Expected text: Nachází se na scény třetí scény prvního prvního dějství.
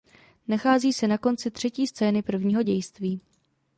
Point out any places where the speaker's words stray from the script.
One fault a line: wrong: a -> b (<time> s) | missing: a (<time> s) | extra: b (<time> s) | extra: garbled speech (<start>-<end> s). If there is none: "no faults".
wrong: scény -> konci (1.2 s)
missing: prvního (2.6 s)